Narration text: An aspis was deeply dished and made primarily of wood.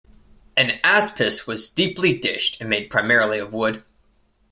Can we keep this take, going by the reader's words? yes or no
yes